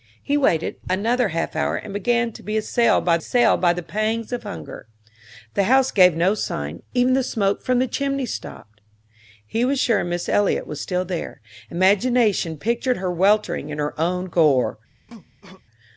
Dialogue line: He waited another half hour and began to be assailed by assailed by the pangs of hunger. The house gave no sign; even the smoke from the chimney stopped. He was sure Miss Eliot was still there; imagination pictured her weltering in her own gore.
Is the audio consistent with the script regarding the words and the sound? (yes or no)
no